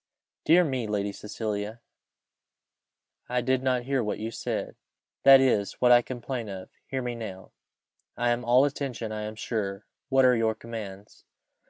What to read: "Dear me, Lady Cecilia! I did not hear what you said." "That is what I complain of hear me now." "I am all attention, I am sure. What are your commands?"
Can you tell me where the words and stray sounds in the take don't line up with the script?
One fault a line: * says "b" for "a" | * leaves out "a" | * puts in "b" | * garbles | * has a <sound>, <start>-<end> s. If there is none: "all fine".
all fine